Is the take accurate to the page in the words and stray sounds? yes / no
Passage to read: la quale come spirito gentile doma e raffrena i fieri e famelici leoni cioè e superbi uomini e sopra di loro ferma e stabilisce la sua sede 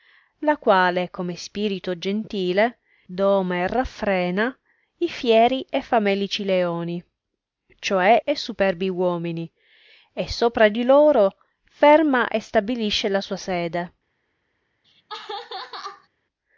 no